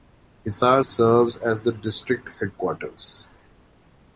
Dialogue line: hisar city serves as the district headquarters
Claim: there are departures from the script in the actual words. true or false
true